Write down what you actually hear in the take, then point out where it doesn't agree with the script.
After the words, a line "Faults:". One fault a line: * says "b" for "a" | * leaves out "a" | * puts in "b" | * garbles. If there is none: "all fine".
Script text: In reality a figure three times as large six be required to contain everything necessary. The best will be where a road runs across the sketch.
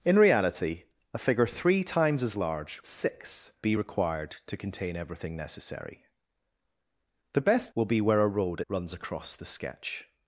In reality a figure three times as large six be required to contain everything necessary. The best will be where a road runs across the sketch.
Faults:
all fine